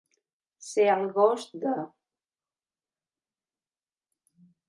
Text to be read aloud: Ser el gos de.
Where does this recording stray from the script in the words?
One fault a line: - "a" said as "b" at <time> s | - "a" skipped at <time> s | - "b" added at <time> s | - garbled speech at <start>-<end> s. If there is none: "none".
none